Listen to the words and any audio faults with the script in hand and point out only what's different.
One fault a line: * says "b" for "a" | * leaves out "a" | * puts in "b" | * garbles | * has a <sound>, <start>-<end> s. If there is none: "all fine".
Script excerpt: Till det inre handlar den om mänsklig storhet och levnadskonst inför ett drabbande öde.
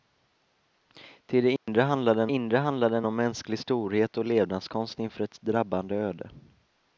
* has a dropout, 1.6-1.7 s
* puts in "inre handlar den"